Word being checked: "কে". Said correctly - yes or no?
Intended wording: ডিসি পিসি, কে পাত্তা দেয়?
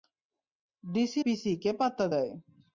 yes